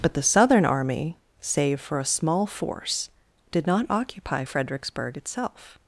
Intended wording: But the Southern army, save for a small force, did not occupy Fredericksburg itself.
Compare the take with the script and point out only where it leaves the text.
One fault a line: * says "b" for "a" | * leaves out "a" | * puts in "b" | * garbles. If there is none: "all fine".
all fine